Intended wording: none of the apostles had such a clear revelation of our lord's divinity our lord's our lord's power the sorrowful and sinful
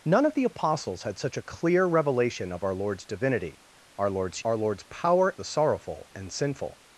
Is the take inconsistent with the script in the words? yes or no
no